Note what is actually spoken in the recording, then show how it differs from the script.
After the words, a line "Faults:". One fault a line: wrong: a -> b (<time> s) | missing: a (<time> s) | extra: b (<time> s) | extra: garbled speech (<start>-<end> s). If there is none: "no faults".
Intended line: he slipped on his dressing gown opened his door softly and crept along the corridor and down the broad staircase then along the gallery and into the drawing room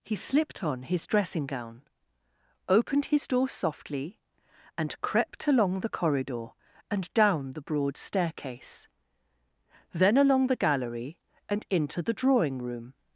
he slipped on his dressing gown opened his door softly and crept along the corridor and down the broad staircase then along the gallery and into the drawing room
Faults:
no faults